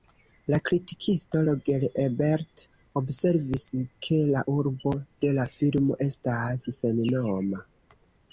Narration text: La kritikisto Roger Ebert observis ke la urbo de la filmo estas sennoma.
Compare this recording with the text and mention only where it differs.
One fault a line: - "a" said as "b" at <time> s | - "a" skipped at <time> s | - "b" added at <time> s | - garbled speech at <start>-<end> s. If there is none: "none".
none